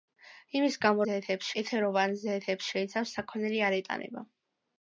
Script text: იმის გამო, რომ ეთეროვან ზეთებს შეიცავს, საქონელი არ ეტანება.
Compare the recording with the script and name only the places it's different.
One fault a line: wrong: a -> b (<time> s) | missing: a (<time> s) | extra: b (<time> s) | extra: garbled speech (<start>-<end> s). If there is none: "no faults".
wrong: რომ -> ზეთებს (1.0 s)